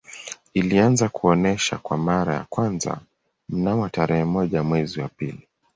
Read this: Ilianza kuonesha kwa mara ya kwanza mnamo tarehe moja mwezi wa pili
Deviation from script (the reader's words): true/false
false